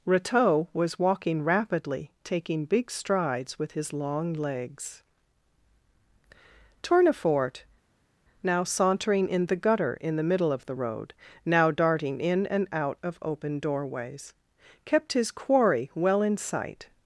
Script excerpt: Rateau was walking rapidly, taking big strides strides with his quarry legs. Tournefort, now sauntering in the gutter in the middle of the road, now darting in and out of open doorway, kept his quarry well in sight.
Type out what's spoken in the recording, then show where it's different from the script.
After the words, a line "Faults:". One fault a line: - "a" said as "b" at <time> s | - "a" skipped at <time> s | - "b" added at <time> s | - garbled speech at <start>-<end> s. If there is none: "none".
Rateau was walking rapidly, taking big strides with his long legs. Tournefort, now sauntering in the gutter in the middle of the road, now darting in and out of open doorways, kept his quarry well in sight.
Faults:
- "strides" skipped at 3.6 s
- "quarry" said as "long" at 3.9 s
- "doorway" said as "doorways" at 13.6 s